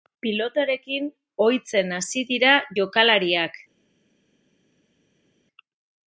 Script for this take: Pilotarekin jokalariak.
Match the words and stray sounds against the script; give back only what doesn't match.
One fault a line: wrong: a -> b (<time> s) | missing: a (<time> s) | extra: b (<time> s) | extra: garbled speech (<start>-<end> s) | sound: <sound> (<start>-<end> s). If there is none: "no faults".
extra: ohitzen hasi dira (1.5 s)